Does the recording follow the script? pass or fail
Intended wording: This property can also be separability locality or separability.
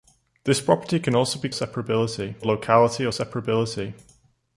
pass